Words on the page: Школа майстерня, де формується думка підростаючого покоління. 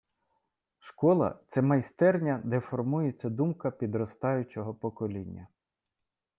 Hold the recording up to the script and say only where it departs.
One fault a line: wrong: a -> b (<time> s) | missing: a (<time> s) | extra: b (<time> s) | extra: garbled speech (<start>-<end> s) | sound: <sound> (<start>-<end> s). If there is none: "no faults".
extra: це (1.5 s)